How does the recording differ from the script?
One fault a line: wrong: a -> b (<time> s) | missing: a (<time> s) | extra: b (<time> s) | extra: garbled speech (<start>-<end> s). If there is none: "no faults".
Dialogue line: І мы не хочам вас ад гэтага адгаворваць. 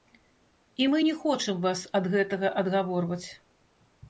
no faults